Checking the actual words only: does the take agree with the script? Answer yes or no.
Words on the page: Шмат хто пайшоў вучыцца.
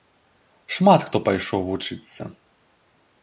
yes